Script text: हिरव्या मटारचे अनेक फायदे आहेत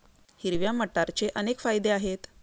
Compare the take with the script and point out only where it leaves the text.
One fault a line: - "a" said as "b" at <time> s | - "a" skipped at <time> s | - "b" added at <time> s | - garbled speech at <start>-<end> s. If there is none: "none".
none